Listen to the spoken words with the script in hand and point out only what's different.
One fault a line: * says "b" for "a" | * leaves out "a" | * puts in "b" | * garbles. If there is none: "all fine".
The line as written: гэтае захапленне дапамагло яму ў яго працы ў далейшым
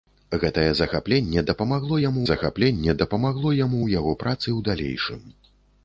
* puts in "захапленне дапамагло яму"